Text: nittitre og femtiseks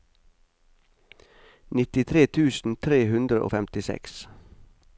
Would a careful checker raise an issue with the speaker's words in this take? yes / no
yes